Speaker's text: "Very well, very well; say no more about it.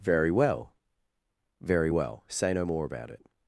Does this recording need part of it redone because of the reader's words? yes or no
no